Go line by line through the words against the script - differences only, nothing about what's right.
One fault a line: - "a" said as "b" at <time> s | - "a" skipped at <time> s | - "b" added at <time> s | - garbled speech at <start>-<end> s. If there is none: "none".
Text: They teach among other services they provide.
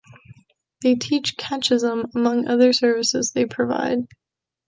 - "catechism" added at 1.4 s